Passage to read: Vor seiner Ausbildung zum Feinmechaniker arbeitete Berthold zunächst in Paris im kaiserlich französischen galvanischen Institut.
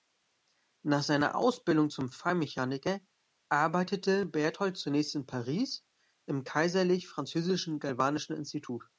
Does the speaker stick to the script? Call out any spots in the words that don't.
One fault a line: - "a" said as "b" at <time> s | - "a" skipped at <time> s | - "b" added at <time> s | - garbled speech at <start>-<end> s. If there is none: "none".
- "Vor" said as "Nach" at 0.8 s